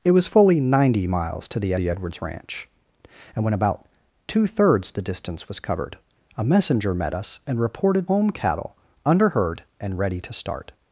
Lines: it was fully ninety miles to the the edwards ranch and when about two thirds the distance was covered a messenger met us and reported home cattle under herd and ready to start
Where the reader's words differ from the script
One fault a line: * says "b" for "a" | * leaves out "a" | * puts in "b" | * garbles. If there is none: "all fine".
all fine